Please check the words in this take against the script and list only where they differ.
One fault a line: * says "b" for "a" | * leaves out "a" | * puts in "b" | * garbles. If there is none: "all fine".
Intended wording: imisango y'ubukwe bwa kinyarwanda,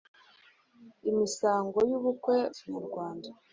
* leaves out "bwa"